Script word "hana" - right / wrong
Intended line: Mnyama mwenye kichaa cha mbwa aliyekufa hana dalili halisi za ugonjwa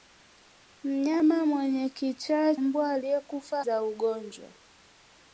wrong